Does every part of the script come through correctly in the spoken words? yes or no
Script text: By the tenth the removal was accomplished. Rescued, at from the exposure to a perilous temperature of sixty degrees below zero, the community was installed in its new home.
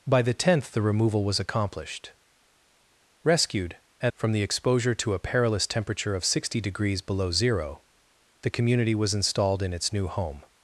yes